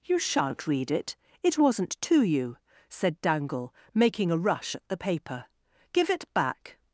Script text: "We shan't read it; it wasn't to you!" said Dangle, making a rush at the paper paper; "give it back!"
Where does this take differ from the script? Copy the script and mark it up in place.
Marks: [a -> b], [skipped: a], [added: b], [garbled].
["We -> You] shan't read it; it wasn't to you!" said Dangle, making a rush at the paper [skipped: paper;] "give it back!"